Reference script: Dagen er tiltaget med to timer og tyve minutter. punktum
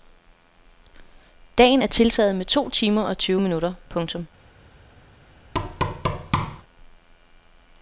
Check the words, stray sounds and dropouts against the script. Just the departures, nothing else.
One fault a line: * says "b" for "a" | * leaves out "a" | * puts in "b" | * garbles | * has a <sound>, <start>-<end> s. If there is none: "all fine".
* has a thud, 5.5-6.6 s